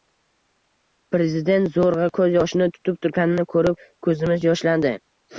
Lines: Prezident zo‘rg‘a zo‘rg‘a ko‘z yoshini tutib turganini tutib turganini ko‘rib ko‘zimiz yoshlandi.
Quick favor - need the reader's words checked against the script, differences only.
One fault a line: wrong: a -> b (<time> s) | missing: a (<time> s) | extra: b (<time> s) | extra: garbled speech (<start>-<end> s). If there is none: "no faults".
missing: zo‘rg‘a (2.1 s)
missing: tutib turganini (3.5 s)